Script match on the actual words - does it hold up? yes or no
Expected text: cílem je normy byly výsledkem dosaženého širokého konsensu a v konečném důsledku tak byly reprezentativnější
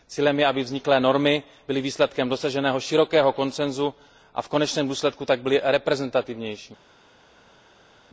no